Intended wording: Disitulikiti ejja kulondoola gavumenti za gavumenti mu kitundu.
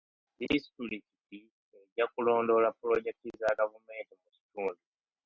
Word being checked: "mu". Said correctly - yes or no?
yes